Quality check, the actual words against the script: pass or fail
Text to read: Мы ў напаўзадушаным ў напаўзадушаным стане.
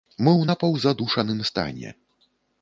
fail